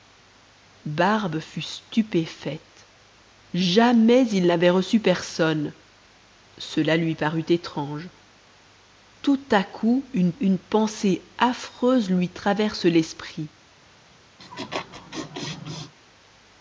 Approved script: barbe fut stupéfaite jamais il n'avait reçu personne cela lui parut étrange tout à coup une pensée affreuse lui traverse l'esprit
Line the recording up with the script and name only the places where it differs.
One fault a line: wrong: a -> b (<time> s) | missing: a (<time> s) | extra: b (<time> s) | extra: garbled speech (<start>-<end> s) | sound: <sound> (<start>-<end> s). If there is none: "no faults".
extra: une (10.4 s)
sound: laugh (14.4-15.9 s)